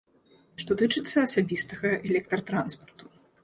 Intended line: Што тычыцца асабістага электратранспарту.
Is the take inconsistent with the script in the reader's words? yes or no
no